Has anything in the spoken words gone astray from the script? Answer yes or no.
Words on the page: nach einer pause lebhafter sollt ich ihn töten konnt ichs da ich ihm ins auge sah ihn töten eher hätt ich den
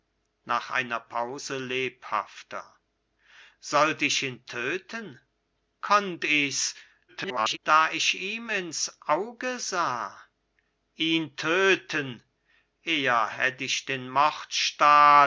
yes